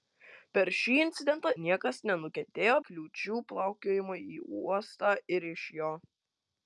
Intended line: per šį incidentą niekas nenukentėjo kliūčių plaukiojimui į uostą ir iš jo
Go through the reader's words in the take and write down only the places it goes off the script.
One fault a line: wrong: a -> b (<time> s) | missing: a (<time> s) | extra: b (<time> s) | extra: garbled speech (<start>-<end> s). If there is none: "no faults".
no faults